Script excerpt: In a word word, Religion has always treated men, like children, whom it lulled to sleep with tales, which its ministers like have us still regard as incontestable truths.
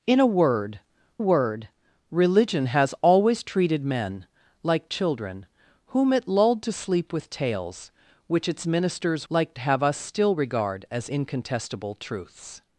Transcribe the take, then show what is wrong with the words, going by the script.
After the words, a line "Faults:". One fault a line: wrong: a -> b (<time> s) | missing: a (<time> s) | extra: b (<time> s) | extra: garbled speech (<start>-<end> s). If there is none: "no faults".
In a word word, Religion has always treated men, like children, whom it lulled to sleep with tales, which its ministers like have us still regard as incontestable truths.
Faults:
no faults